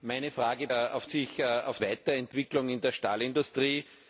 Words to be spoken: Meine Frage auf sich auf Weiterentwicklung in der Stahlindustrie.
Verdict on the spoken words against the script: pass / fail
pass